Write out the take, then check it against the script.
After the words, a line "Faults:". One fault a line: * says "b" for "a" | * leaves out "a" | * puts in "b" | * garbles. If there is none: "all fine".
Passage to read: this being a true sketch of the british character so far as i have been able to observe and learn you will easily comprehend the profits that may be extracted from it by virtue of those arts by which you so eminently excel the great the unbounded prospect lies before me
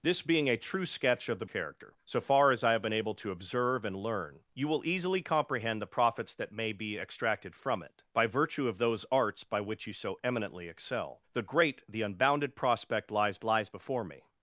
this being a true sketch of the character so far as i have been able to observe and learn you will easily comprehend the profits that may be extracted from it by virtue of those arts by which you so eminently excel the great the unbounded prospect lies lies before me
Faults:
* leaves out "british"
* puts in "lies"